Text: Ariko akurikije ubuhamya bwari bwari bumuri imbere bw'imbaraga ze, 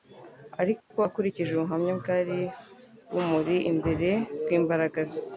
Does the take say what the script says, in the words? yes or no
no